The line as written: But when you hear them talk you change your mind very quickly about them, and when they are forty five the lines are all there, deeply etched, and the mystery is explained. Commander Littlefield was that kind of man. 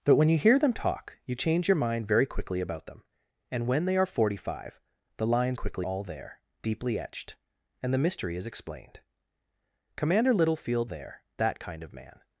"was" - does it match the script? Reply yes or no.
no